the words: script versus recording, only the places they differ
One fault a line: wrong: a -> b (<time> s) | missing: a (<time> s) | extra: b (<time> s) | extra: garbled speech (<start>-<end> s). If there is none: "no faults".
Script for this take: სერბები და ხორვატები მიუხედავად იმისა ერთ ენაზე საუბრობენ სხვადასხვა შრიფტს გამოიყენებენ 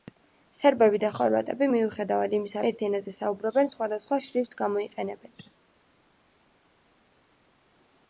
no faults